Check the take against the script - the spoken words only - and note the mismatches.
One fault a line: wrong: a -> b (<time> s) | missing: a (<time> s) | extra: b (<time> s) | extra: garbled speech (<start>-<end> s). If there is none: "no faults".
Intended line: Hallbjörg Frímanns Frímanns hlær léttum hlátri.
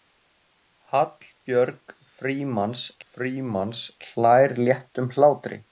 no faults